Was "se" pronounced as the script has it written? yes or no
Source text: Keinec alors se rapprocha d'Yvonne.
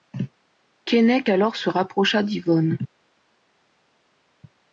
yes